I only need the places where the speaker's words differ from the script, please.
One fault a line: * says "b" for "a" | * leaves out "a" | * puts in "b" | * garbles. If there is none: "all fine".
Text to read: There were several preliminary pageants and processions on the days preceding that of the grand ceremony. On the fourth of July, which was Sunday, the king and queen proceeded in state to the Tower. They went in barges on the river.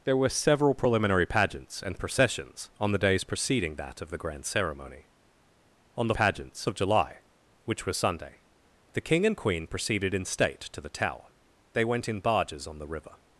* says "pageants" for "fourth"